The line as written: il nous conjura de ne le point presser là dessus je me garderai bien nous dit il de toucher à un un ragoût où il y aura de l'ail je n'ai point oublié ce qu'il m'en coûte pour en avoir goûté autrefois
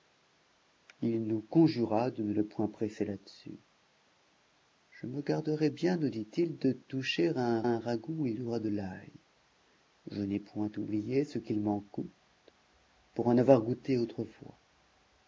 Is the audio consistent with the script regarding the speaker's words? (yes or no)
yes